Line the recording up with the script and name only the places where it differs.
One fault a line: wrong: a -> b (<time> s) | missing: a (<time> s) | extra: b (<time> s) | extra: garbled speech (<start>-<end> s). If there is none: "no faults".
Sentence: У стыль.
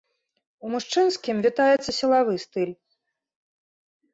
extra: мужчынскім вітаецца сілавы (0.7 s)